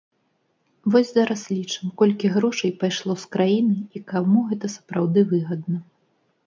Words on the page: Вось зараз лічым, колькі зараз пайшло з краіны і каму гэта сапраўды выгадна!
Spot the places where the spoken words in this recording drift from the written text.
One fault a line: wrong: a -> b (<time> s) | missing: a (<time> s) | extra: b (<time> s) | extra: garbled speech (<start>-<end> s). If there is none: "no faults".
wrong: зараз -> грошай (2.4 s)